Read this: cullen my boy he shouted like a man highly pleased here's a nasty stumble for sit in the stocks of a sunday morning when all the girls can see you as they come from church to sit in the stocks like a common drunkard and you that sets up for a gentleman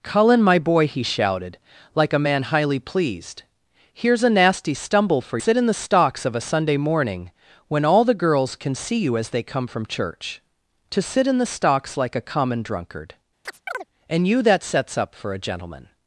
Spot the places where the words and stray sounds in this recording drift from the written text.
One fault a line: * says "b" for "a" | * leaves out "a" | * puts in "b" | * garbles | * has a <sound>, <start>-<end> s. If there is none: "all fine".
* has a chirp, 13.4-13.9 s